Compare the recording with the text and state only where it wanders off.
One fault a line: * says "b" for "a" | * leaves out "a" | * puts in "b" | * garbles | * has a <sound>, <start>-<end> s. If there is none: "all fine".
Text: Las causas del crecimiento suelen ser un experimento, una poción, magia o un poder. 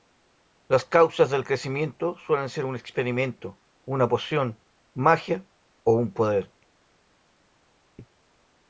all fine